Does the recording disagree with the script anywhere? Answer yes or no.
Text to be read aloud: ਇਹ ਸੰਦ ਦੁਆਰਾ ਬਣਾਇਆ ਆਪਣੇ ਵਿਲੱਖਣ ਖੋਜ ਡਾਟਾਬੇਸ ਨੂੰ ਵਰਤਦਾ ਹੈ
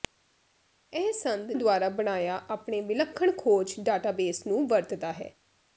no